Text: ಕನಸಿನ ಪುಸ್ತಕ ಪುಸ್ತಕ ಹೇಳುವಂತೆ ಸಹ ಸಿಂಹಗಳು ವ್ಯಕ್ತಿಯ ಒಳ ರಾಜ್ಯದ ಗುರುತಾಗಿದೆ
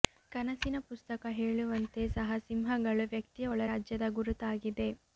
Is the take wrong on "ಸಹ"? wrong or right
right